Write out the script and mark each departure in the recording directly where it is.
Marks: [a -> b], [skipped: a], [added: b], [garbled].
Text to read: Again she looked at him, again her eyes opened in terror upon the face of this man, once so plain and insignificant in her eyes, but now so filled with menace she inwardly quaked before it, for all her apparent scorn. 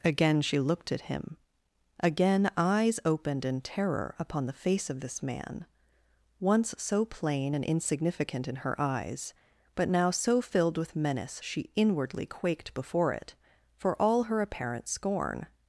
Again she looked at him, again [skipped: her] eyes opened in terror upon the face of this man, once so plain and insignificant in her eyes, but now so filled with menace she inwardly quaked before it, for all her apparent scorn.